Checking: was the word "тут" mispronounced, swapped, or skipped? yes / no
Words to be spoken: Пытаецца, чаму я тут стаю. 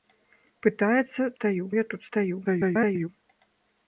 no